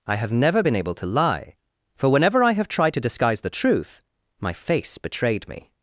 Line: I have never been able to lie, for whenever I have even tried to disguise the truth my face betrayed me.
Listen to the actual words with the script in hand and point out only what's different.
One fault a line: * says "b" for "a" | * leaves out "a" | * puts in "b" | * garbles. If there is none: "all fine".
* leaves out "even"